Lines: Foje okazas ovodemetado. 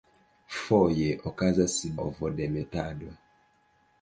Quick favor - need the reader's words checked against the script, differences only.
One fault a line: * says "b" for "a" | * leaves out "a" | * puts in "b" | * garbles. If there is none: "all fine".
all fine